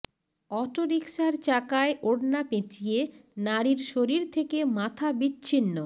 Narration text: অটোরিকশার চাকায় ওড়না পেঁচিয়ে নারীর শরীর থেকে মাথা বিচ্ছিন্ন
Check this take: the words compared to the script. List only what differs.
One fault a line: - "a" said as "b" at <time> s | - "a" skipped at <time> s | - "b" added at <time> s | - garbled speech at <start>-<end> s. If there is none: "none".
none